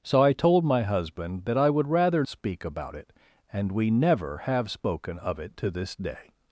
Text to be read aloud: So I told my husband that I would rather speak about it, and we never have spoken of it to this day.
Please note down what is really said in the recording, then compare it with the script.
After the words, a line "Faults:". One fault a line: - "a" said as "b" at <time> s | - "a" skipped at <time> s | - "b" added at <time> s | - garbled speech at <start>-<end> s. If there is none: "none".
So I told my husband that I would rather speak about it, and we never have spoken of it to this day.
Faults:
none